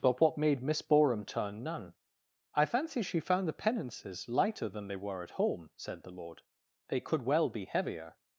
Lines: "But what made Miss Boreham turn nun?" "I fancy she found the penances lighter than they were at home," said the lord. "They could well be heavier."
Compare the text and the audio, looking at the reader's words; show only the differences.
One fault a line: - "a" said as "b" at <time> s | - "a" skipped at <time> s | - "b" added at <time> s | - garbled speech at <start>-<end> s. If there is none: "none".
none